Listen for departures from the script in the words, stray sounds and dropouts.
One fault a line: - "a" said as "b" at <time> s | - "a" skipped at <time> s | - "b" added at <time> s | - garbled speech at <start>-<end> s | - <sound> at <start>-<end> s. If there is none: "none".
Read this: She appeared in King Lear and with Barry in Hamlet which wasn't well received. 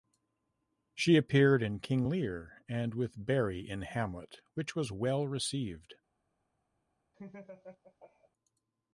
- "wasn't" said as "was" at 4.7 s
- laugh at 7.1-8.3 s